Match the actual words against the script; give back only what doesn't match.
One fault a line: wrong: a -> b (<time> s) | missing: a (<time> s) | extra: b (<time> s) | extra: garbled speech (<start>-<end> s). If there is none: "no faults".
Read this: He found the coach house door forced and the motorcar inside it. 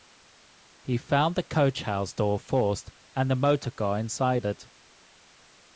no faults